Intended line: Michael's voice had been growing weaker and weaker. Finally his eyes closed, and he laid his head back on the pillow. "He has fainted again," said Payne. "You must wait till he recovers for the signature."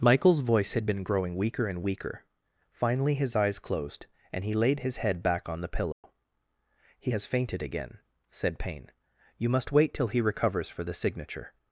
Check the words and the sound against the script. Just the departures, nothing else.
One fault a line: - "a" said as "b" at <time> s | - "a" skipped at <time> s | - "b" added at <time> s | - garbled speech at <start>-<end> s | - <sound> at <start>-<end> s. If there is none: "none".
- dropout at 5.9-6.0 s